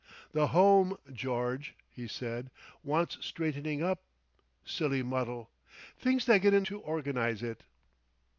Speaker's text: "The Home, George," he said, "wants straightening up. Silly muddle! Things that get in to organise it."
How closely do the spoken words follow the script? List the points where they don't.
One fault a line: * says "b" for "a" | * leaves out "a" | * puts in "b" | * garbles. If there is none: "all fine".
all fine